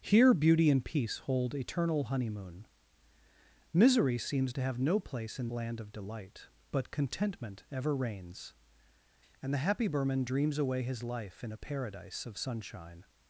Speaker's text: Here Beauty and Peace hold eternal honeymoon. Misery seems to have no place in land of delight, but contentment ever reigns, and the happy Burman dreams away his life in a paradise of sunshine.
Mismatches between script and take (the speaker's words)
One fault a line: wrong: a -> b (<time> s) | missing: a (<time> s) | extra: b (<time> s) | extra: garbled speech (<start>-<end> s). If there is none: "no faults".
no faults